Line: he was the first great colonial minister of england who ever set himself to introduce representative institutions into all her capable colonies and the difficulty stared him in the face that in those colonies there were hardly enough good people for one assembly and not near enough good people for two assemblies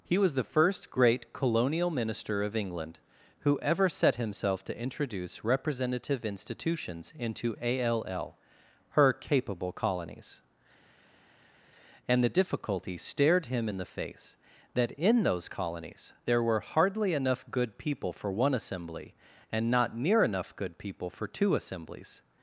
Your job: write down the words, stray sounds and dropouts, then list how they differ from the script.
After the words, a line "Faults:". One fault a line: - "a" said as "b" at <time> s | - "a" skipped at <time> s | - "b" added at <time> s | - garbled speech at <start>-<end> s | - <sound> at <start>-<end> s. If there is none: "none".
he was the first great colonial minister of england who ever set himself to introduce representative institutions into all her capable colonies and the difficulty stared him in the face that in those colonies there were hardly enough good people for one assembly and not near enough good people for two assemblies
Faults:
none